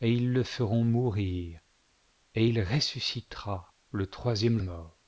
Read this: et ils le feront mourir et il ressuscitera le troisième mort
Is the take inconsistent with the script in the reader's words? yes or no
no